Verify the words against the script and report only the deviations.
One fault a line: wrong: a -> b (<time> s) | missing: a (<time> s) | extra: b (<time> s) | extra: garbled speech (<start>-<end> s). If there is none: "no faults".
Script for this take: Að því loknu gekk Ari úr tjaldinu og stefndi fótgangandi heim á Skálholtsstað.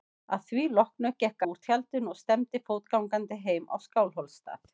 missing: Ari (1.4 s)